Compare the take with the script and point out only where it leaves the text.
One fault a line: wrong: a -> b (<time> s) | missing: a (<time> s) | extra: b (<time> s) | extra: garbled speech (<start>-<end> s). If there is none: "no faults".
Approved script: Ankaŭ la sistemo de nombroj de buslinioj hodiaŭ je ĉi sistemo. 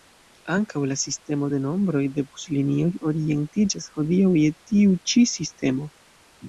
extra: orientiĝas (3.1 s)
extra: tiu (4.7 s)